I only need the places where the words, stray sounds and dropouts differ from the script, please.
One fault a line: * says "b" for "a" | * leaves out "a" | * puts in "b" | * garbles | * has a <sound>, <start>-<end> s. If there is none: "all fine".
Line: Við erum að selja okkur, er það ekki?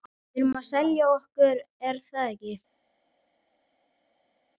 all fine